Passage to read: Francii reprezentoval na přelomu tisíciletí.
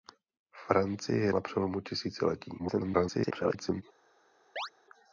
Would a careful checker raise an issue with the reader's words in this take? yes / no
yes